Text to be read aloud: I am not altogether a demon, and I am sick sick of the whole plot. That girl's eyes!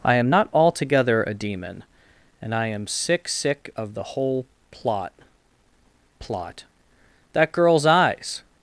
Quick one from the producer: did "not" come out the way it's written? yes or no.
yes